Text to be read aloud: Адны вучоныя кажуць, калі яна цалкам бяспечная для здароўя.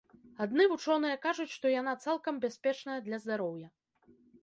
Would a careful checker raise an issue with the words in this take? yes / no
yes